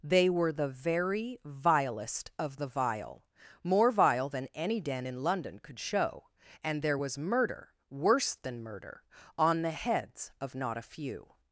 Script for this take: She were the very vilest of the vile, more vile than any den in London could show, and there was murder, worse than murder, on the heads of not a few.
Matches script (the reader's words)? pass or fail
fail